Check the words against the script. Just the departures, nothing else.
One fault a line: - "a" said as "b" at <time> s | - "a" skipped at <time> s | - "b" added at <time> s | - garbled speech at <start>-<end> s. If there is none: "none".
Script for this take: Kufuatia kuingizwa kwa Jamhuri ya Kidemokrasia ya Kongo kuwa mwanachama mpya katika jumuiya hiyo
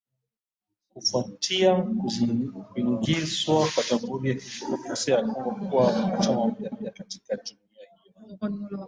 - "mpya" added at 6.7 s